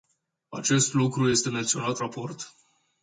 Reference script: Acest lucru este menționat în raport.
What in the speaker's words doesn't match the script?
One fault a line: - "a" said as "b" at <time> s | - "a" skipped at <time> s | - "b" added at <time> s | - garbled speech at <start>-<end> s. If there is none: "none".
- "în" skipped at 2.0 s